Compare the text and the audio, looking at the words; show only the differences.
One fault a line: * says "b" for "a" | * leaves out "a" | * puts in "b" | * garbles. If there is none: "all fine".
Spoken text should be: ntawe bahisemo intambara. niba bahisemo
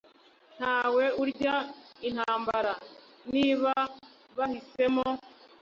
* says "urya" for "bahisemo"